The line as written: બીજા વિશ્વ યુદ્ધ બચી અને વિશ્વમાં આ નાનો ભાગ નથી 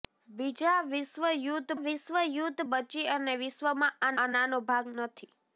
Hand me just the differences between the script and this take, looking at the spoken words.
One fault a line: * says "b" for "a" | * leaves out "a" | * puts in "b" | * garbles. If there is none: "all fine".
* puts in "વિશ્વ યુદ્ધ"
* puts in "આ"